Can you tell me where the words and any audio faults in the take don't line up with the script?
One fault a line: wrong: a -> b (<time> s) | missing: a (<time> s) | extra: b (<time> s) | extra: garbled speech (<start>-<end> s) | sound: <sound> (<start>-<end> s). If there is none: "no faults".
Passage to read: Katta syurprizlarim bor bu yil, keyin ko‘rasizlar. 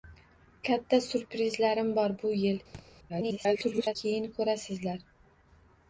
sound: thud (2.7-2.9 s)
extra: garbled speech (3.1-3.9 s)